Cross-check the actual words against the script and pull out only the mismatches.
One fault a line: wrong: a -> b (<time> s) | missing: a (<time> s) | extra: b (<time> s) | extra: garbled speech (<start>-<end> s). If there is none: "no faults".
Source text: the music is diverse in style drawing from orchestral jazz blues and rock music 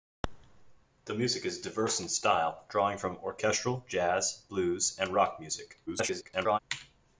extra: garbled speech (5.9-6.6 s)